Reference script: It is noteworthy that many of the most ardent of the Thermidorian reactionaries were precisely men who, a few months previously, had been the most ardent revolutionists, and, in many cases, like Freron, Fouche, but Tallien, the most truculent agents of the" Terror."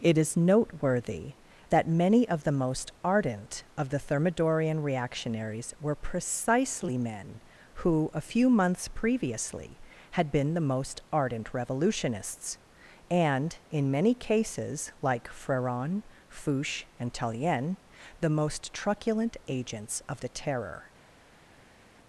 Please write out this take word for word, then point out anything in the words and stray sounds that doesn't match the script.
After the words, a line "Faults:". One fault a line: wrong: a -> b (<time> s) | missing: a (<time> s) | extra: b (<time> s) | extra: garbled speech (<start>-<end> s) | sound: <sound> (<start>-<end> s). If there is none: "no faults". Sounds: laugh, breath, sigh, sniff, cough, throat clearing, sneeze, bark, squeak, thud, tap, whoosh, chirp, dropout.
It is noteworthy that many of the most ardent of the Thermidorian reactionaries were precisely men who, a few months previously, had been the most ardent revolutionists, and, in many cases, like Freron, Fouche, and Tallien, the most truculent agents of the" Terror."
Faults:
wrong: but -> and (17.0 s)